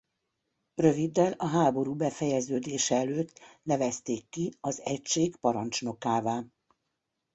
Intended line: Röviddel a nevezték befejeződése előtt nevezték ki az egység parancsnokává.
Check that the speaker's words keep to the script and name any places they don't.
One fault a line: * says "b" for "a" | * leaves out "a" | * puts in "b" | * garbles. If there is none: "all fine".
* says "háború" for "nevezték"